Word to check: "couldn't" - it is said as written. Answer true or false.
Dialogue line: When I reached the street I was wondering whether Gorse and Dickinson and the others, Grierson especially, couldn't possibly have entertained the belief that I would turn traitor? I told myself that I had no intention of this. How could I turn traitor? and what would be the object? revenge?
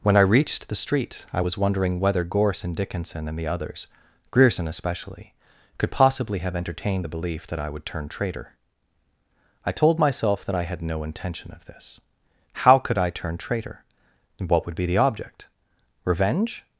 false